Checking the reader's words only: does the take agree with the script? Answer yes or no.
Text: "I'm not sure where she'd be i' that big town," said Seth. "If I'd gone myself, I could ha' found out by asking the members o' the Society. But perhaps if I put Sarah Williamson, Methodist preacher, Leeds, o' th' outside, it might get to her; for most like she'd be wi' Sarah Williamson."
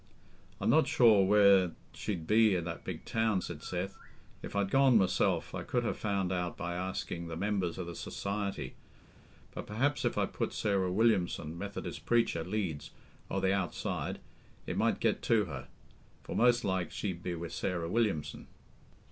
yes